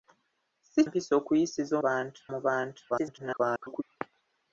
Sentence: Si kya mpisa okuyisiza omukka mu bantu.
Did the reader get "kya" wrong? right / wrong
wrong